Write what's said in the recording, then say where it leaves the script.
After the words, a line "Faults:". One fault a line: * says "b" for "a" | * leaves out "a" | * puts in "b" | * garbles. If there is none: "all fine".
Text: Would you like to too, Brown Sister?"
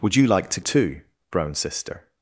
Would you like to too, Brown Sister?"
Faults:
all fine